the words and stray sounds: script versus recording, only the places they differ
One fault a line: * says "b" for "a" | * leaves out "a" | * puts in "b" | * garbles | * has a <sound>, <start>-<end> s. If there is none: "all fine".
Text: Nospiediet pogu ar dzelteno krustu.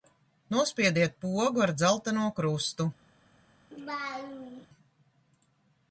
* has a laugh, 3.7-4.7 s